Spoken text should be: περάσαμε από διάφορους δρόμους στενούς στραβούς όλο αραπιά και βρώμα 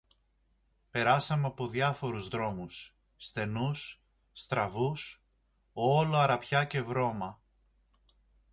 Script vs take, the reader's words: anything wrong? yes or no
no